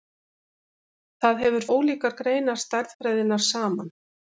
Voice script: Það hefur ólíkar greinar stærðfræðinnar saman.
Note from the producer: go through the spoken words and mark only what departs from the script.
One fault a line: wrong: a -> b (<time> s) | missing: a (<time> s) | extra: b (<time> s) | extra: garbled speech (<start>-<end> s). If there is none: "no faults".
no faults